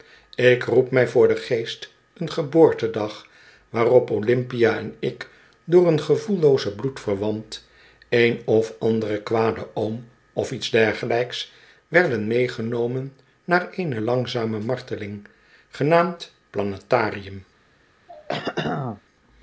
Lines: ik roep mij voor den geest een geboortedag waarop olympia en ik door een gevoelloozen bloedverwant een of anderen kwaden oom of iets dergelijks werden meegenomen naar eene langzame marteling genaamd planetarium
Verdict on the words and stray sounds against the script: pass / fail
fail